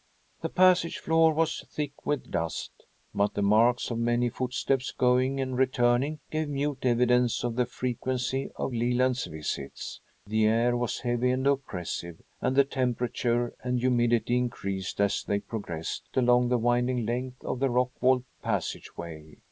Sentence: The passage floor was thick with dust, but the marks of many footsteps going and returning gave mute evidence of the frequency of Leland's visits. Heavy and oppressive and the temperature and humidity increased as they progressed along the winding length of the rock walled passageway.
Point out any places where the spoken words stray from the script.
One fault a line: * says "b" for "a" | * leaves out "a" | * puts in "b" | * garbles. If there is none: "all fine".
* puts in "The air was"